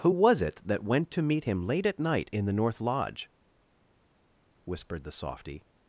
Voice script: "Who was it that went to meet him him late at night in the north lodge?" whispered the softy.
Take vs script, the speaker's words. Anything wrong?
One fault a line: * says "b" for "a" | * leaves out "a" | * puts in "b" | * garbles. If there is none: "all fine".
* leaves out "him"